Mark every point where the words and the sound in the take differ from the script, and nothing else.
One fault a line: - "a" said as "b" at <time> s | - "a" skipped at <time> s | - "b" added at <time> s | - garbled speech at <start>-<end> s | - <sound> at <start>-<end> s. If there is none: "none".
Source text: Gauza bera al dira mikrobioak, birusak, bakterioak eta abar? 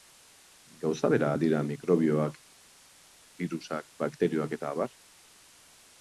none